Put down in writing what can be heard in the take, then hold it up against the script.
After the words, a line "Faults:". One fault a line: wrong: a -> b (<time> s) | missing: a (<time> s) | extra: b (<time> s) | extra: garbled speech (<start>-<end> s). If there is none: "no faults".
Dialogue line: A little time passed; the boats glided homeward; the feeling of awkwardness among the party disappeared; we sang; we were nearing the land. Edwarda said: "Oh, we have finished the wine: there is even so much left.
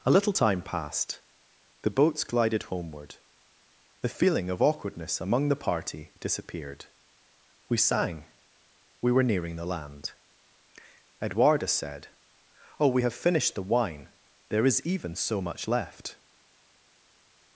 A little time passed; the boats glided homeward; the feeling of awkwardness among the party disappeared; we sang; we were nearing the land. Edwarda said: "Oh, we have finished the wine: there is even so much left.
Faults:
no faults